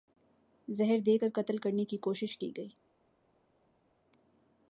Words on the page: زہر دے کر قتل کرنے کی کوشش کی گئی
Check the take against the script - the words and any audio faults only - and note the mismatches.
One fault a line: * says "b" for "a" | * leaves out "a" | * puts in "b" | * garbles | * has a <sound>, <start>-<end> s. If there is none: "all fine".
all fine